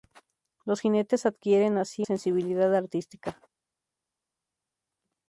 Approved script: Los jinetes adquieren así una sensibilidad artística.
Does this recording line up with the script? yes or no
no